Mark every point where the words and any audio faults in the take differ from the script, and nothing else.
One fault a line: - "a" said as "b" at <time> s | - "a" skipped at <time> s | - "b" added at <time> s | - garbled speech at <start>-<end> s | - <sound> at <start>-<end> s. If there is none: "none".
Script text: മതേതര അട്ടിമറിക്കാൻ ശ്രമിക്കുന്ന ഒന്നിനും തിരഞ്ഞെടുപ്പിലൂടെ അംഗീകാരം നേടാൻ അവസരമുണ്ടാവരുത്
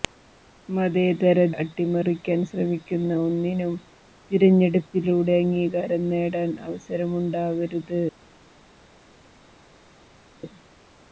none